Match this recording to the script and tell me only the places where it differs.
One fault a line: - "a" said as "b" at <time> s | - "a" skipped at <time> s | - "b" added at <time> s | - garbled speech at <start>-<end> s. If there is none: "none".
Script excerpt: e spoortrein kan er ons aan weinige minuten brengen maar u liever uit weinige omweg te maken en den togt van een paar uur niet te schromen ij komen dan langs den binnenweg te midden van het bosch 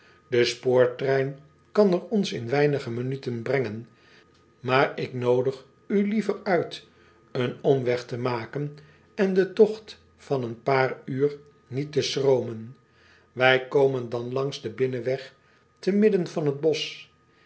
- "aan" said as "in" at 2.3 s
- "ik noodig" added at 5.0 s
- "weinige" said as "een" at 7.3 s